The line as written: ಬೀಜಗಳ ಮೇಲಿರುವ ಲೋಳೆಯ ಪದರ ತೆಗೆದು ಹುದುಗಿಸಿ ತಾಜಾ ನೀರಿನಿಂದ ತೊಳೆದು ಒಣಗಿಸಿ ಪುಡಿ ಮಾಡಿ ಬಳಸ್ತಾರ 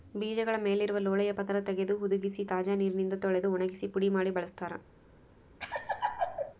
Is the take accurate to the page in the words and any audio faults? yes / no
no